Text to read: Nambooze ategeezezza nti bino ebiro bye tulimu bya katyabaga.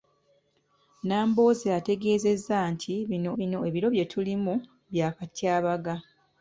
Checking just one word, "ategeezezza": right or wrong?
right